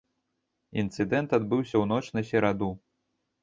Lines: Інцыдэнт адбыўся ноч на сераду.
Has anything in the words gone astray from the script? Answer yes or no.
yes